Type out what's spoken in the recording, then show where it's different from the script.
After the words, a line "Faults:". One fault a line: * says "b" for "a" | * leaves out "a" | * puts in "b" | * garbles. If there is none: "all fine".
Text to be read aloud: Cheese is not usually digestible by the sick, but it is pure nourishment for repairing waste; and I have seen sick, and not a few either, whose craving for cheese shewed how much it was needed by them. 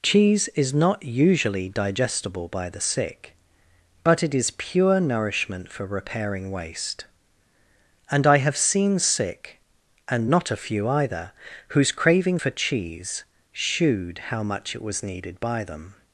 Cheese is not usually digestible by the sick, but it is pure nourishment for repairing waste; and I have seen sick, and not a few either, whose craving for cheese shewed how much it was needed by them.
Faults:
all fine